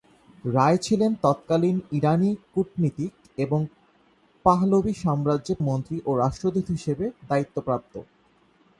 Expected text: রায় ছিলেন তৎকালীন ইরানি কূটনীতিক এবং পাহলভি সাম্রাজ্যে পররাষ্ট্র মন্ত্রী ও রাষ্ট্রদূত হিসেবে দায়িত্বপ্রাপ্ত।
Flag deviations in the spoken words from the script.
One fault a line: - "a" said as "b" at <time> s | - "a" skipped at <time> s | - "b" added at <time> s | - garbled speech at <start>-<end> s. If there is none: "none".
- "পররাষ্ট্র" skipped at 5.5 s